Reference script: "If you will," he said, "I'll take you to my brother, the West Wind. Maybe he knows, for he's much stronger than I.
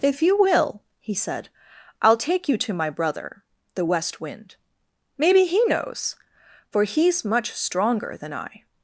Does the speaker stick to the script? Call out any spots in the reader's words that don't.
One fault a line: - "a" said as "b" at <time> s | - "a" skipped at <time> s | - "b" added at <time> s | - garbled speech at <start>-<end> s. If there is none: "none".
none